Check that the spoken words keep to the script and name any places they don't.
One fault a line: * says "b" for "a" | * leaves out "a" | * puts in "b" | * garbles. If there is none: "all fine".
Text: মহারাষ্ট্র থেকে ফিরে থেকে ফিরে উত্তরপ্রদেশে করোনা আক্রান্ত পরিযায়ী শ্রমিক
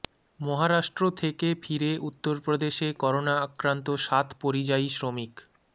* leaves out "থেকে ফিরে"
* puts in "সাত"